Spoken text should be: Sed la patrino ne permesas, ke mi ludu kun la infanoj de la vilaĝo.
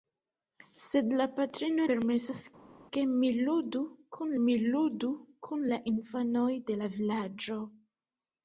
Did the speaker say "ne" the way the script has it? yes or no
no